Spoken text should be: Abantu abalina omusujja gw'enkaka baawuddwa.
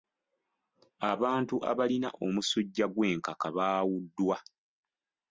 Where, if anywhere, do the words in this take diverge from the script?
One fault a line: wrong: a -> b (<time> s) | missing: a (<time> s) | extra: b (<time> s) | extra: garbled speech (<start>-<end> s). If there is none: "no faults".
no faults